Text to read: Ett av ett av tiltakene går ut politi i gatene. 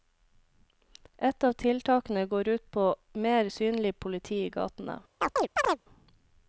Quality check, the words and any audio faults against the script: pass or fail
fail